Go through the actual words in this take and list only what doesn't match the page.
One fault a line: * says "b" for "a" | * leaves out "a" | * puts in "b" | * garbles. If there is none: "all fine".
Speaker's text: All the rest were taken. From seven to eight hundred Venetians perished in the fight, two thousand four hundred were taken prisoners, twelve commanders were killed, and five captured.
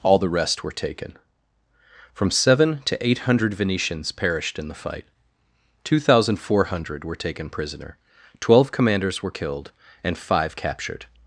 * says "prisoner" for "prisoners"